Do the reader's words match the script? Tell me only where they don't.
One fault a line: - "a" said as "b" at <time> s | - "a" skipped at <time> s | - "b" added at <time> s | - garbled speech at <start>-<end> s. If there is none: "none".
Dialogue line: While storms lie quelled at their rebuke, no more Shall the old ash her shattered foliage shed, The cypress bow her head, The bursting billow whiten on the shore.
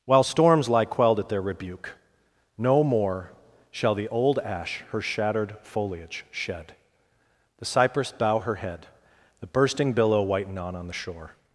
- "on" added at 10.8 s